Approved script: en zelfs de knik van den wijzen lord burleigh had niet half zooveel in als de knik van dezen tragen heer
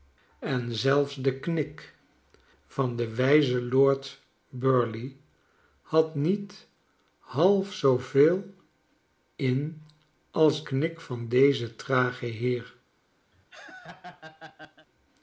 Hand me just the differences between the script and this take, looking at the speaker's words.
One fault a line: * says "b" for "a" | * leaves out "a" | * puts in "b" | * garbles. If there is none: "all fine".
* leaves out "de"